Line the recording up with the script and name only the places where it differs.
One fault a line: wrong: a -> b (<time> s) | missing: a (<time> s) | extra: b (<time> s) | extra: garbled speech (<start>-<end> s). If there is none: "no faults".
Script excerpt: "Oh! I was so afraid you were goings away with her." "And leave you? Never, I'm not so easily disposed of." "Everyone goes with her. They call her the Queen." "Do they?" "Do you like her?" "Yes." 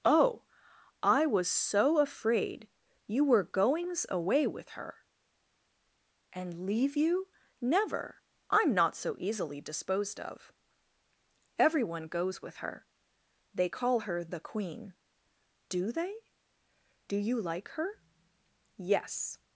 no faults